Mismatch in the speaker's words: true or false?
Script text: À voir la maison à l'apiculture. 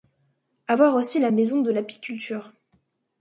true